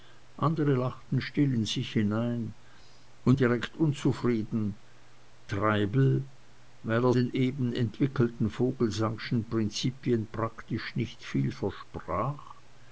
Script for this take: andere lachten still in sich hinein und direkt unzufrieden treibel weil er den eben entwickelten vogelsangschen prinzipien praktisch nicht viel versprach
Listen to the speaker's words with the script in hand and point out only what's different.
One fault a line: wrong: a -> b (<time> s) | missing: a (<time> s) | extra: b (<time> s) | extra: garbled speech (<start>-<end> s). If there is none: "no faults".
no faults